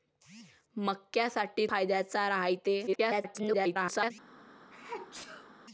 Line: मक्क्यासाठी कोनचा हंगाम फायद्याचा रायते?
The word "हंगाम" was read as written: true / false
false